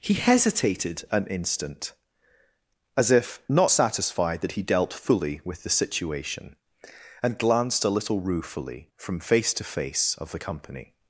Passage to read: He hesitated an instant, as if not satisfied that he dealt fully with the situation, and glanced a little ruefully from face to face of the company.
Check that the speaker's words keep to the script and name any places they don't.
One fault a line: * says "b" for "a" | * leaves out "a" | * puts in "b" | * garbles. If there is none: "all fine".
all fine